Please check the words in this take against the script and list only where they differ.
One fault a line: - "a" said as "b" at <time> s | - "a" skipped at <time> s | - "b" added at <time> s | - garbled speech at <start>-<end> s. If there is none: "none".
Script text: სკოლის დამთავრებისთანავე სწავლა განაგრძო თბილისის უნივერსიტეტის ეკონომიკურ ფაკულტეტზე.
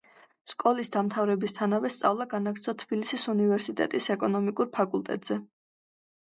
none